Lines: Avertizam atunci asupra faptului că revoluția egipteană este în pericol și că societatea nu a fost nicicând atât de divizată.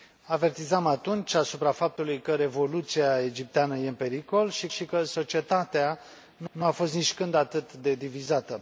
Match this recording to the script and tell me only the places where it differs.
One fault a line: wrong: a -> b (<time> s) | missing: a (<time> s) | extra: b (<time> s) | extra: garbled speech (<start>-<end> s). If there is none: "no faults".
extra: și (4.7 s)
extra: nu (6.5 s)